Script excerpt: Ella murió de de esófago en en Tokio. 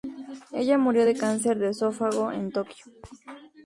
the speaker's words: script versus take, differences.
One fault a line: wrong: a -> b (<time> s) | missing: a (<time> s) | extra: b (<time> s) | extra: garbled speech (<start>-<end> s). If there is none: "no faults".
extra: cáncer (1.2 s)
missing: en (2.5 s)